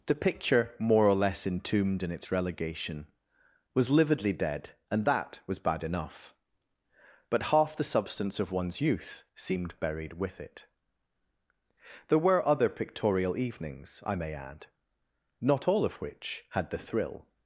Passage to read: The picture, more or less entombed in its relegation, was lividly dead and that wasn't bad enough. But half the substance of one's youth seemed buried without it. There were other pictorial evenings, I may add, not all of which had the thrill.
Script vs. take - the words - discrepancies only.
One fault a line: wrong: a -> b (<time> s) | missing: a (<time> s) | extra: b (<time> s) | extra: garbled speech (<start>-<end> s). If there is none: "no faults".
wrong: wasn't -> was (5.5 s)
wrong: without -> with (10.1 s)